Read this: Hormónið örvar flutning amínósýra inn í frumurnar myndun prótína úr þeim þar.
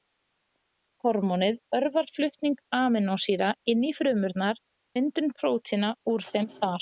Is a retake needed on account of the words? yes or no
no